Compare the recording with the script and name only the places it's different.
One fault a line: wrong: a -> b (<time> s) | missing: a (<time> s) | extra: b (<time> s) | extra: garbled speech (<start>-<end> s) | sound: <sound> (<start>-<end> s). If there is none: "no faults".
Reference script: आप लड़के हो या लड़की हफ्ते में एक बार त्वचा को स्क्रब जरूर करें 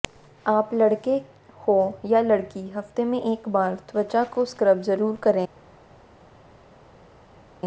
no faults